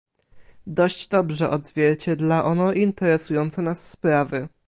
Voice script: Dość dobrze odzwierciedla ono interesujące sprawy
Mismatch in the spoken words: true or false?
true